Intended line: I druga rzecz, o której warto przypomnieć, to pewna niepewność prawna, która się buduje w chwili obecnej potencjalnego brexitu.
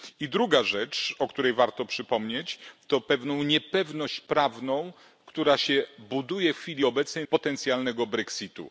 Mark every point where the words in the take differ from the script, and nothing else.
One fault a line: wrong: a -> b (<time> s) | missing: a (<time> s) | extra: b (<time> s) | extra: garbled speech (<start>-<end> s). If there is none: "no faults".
no faults